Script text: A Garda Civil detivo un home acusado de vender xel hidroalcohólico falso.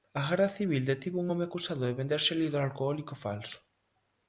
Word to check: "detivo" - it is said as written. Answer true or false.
true